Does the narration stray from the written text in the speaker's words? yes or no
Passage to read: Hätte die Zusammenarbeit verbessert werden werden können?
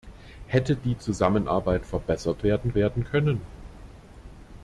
no